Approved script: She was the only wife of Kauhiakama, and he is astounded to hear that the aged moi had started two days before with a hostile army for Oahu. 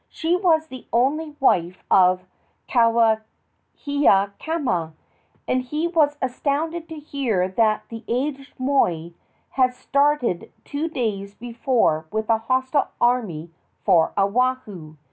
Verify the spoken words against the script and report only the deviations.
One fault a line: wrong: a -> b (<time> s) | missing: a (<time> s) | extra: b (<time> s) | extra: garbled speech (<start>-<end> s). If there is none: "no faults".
wrong: is -> was (5.9 s)